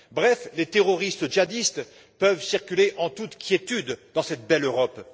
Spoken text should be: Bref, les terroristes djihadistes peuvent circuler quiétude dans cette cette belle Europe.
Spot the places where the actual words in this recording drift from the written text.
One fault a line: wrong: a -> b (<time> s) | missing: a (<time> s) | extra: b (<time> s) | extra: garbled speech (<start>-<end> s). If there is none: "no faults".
extra: en toute (3.0 s)
missing: cette (4.5 s)